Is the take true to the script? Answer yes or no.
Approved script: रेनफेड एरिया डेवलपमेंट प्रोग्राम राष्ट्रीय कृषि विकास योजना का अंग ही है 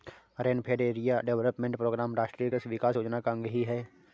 yes